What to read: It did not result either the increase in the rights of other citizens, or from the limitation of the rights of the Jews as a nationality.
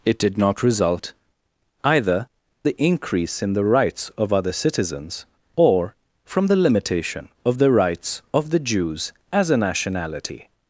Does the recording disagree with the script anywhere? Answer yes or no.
no